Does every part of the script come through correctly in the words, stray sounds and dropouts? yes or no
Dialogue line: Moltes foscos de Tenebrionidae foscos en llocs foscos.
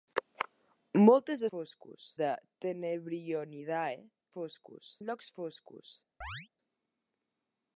no